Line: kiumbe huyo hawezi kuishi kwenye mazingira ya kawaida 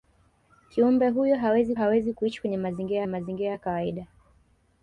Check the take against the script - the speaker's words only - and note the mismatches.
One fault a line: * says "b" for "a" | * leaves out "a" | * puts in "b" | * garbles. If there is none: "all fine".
* puts in "hawezi"
* puts in "mazingira"